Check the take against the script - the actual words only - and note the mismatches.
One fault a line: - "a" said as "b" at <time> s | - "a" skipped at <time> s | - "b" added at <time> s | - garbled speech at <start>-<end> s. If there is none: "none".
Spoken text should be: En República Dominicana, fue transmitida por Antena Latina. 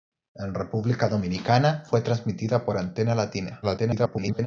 - garbled speech at 3.6-4.5 s